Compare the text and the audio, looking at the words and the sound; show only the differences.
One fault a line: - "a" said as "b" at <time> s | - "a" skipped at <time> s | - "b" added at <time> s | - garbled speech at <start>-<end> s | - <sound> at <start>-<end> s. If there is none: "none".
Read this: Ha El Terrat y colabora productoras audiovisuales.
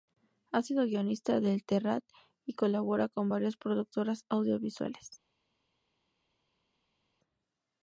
- "sido guionista de" added at 0.6 s
- "con varias" added at 3.1 s